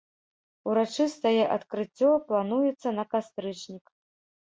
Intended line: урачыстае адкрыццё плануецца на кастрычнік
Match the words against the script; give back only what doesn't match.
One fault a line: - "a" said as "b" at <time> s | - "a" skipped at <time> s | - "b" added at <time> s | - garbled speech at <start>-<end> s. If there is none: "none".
none